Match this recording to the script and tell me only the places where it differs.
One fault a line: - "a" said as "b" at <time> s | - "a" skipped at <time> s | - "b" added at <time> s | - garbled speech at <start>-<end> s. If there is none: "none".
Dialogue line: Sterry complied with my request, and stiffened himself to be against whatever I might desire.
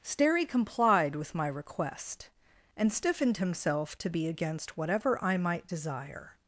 none